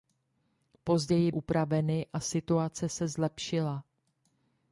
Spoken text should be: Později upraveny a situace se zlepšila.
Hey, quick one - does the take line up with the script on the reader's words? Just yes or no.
yes